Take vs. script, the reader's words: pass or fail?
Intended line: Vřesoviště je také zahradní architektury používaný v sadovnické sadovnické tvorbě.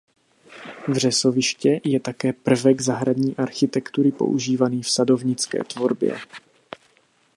fail